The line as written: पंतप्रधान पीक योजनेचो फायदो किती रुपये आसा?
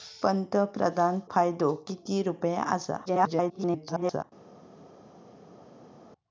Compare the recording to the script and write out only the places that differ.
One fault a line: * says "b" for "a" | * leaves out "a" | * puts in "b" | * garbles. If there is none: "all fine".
* leaves out "पीक योजनेचो"
* garbles